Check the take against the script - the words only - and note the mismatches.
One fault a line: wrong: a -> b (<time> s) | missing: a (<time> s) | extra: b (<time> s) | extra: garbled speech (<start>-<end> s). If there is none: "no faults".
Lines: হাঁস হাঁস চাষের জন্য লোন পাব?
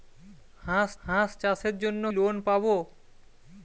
no faults